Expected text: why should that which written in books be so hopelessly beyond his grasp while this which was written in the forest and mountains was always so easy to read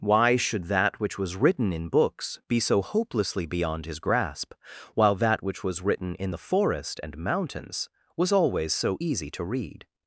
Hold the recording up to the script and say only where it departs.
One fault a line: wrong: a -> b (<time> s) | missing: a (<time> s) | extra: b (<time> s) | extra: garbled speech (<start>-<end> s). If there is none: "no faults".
extra: was (1.2 s)
wrong: this -> that (5.1 s)